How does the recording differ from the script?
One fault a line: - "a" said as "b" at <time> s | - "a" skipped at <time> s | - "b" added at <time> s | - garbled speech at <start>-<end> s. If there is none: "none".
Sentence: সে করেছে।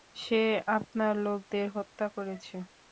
- "আপনার লোকদের হত্যা" added at 0.8 s